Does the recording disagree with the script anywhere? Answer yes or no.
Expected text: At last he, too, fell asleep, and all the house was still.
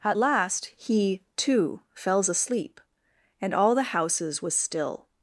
yes